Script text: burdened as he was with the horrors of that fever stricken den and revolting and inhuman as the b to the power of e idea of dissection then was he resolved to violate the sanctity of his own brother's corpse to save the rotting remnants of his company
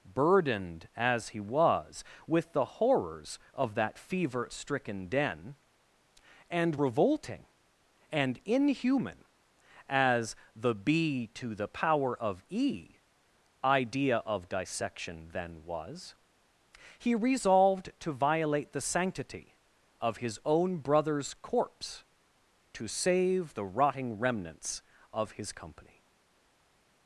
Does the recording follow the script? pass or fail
pass